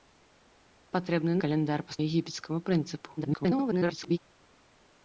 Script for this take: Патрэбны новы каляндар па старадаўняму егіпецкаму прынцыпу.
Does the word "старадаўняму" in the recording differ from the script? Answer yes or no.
yes